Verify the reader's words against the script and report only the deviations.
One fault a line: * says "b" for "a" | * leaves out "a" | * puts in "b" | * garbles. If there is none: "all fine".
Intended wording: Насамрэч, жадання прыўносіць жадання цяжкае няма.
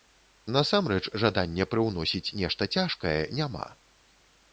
* says "нешта" for "жадання"